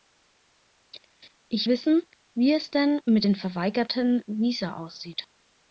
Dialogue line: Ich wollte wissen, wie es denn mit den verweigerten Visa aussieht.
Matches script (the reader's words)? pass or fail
fail